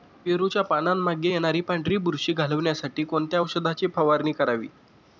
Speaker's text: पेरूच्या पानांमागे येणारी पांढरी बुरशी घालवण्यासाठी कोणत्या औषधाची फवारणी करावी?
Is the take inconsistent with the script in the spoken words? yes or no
no